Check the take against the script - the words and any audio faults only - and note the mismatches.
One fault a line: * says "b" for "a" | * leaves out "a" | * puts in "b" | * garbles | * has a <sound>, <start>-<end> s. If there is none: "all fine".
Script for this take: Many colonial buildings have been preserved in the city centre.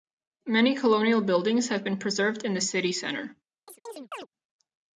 * has a chirp, 3.7-4.3 s